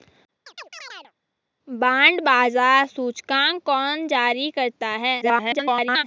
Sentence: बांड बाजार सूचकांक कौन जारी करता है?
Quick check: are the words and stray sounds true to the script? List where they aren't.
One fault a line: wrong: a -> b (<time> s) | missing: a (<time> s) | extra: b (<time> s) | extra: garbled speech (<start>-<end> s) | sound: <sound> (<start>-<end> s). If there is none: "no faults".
sound: chirp (0.5-1.1 s)
extra: garbled speech (5.2-6.0 s)